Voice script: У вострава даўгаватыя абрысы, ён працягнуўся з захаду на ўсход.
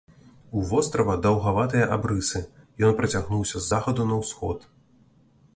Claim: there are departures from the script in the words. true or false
false